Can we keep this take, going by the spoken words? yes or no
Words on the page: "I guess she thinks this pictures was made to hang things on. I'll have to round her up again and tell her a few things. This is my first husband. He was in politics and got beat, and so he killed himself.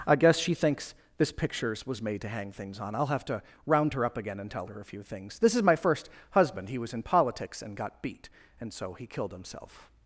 yes